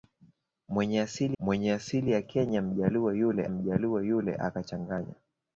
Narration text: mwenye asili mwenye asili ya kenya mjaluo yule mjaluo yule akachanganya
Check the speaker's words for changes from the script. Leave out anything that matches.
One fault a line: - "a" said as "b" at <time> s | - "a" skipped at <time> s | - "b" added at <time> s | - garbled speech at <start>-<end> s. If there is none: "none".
none